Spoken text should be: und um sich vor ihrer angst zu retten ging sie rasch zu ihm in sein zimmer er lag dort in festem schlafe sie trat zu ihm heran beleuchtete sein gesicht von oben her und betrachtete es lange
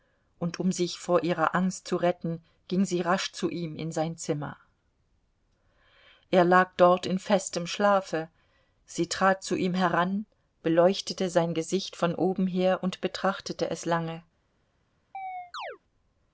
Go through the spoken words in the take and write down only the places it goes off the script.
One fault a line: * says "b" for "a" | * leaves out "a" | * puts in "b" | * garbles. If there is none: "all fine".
all fine